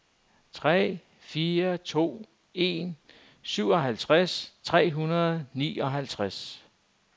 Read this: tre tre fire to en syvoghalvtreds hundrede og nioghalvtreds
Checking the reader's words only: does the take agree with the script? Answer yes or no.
no